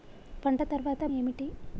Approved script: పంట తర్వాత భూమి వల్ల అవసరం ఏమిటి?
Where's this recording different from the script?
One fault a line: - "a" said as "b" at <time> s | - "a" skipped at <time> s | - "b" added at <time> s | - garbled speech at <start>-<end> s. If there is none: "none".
- "భూమి వల్ల అవసరం" skipped at 1.1 s